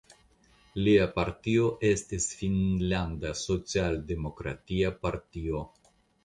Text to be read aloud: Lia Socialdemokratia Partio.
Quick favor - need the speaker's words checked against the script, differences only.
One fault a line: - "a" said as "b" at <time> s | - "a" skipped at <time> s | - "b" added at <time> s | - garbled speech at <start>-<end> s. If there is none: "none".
- "partio estis Finnlanda" added at 1.1 s